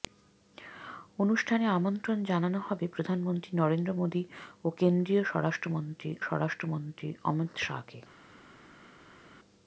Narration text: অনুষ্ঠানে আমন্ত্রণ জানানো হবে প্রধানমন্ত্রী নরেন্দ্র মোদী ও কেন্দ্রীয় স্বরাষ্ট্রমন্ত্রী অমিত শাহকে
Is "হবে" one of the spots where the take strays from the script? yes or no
no